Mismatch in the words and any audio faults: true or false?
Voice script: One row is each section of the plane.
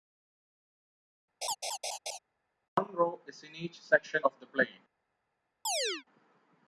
true